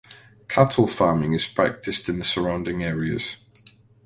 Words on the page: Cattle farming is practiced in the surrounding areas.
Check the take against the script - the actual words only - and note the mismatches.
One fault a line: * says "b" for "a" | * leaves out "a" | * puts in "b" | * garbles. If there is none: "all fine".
all fine